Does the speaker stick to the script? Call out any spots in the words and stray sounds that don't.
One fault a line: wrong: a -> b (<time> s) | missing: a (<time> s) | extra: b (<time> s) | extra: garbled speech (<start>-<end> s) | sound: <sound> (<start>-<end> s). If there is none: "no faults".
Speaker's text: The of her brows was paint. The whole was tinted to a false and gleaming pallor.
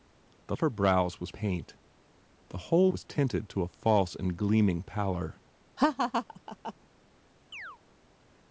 sound: laugh (5.8-6.7 s)
sound: chirp (7.5-7.8 s)